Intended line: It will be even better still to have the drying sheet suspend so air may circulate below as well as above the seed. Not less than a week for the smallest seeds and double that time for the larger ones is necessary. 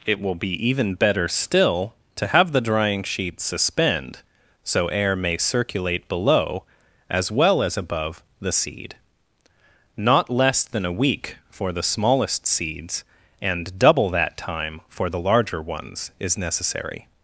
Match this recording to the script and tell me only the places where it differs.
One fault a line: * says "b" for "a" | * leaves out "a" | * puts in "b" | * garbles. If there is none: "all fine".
all fine